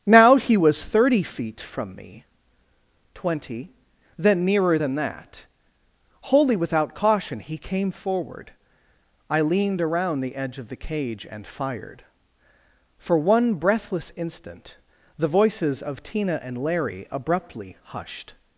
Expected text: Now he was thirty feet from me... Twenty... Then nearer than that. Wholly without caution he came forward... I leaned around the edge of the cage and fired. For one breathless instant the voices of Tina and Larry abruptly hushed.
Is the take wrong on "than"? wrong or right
right